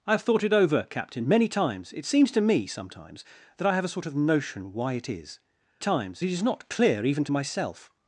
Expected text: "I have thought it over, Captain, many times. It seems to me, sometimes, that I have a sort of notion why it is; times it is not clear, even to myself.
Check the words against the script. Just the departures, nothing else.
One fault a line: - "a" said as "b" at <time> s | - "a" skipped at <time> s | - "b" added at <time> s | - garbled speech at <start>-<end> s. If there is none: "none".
none